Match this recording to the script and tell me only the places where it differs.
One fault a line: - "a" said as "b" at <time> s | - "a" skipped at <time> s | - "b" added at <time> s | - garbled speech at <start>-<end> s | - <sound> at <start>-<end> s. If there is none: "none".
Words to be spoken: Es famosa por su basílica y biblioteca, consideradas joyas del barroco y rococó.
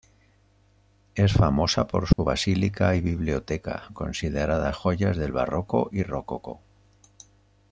- dropout at 2.1-2.2 s